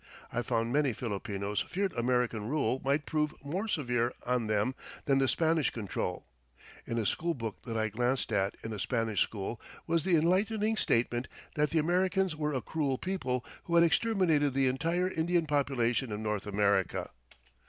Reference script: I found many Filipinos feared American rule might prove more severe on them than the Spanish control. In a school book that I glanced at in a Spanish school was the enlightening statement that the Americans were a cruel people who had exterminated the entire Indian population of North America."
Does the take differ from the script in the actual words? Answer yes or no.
no